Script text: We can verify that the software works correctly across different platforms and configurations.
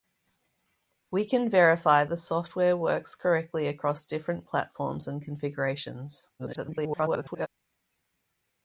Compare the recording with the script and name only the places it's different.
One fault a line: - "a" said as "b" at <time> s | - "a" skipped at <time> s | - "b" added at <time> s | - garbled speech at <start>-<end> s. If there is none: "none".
- "that" skipped at 2.0 s
- garbled speech at 6.4-7.5 s